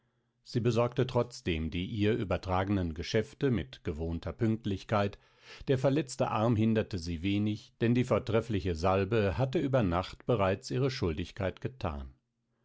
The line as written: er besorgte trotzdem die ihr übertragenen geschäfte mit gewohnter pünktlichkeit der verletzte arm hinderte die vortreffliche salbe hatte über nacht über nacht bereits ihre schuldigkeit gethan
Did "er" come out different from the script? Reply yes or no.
yes